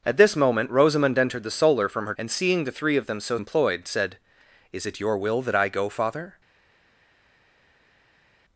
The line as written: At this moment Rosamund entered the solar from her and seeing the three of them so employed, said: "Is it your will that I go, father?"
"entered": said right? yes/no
yes